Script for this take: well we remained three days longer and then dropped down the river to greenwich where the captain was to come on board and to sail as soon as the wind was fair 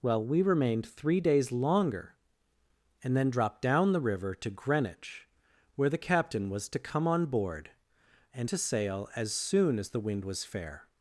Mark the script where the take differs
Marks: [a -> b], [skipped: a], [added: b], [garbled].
well we remained three days longer and then dropped down the river to greenwich where the captain was to come on board and to sail as soon as the wind was fair